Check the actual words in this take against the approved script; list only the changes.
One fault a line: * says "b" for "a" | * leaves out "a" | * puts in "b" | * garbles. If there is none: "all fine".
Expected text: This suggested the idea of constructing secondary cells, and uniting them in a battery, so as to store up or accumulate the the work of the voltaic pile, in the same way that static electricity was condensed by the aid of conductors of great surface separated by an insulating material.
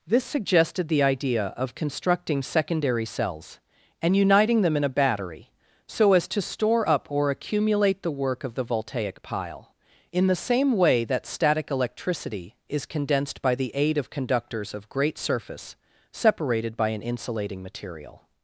* leaves out "the"
* says "is" for "was"